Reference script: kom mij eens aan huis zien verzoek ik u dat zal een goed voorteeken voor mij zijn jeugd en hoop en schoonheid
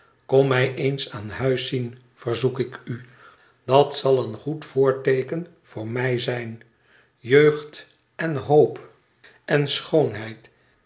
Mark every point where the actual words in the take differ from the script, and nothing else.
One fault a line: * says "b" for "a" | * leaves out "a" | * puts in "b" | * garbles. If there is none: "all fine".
all fine